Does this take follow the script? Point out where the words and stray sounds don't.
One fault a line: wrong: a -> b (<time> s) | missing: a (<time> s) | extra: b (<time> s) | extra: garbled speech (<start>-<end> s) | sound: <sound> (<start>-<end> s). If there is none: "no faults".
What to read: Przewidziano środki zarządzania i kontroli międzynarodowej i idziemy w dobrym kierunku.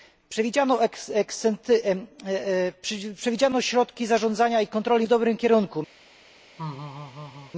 missing: międzynarodowej i idziemy (5.1 s)
sound: laugh (6.6-7.5 s)